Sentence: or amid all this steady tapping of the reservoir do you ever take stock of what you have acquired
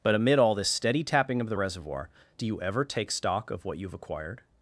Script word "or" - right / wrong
wrong